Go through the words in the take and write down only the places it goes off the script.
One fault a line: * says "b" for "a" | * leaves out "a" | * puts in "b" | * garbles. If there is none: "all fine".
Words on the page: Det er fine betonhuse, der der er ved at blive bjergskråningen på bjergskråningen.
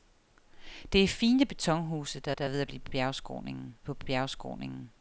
all fine